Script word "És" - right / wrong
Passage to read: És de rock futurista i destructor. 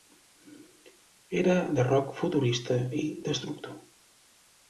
wrong